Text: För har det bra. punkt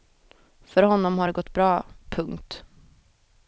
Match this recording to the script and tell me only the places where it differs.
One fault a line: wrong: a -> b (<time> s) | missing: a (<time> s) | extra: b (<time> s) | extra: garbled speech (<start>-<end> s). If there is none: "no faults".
extra: honom (0.8 s)
extra: gått (1.3 s)